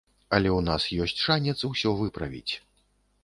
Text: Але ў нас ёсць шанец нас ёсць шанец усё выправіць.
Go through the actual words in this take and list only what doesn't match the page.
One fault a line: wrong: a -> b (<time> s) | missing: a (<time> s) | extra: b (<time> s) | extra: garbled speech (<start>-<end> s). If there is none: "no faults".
missing: нас ёсць шанец (1.6 s)